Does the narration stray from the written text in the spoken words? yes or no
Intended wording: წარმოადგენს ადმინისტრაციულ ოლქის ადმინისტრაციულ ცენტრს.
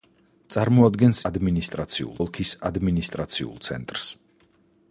no